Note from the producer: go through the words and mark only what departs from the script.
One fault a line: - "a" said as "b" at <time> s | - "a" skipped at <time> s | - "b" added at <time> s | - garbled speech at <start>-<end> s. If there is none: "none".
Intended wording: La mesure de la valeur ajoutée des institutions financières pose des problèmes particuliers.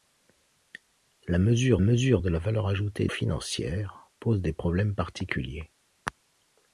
- "mesure" added at 1.8 s
- "des institutions" skipped at 3.1 s